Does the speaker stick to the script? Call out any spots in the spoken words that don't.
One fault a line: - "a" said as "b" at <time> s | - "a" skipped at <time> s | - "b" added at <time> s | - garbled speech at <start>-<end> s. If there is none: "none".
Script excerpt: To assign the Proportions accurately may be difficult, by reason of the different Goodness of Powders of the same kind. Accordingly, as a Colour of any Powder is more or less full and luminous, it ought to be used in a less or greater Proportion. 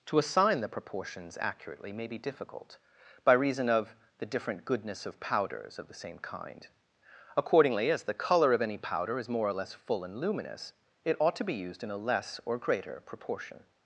- "a" said as "the" at 8.0 s